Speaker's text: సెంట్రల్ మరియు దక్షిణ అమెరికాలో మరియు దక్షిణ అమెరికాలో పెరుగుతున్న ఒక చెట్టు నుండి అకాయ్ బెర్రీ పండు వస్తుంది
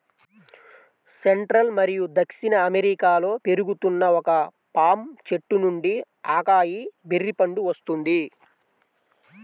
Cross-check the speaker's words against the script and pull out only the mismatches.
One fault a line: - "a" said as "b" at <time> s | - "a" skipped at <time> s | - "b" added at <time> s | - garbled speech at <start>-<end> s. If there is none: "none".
- "మరియు దక్షిణ అమెరికాలో" skipped at 3.3 s
- "పామ్" added at 4.7 s